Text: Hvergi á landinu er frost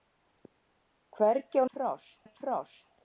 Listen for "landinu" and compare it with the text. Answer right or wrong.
wrong